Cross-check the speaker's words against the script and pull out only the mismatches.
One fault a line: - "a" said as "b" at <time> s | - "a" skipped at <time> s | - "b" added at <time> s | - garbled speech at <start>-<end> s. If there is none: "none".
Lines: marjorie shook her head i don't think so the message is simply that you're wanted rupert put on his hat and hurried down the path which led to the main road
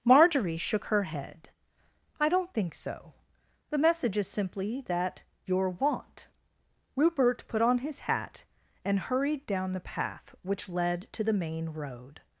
- "wanted" said as "want" at 5.7 s